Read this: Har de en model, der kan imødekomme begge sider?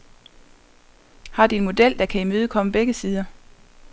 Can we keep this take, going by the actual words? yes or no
yes